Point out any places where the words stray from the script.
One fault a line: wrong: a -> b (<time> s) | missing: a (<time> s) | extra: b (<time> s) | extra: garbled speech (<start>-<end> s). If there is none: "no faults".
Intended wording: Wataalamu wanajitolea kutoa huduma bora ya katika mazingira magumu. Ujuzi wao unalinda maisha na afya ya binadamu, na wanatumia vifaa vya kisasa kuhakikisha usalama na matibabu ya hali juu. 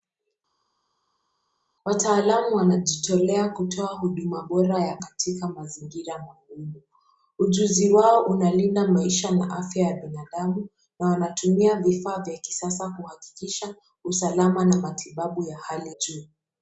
no faults